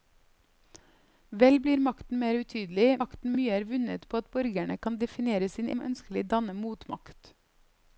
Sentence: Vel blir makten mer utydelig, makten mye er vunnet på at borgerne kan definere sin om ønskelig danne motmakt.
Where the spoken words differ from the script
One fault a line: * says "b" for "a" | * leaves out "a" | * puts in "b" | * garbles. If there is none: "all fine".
all fine